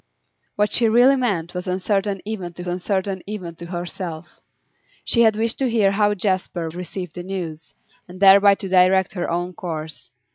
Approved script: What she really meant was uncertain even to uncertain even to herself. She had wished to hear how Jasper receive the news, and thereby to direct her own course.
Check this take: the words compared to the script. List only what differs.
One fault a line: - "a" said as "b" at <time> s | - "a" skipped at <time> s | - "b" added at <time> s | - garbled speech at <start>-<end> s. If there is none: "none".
none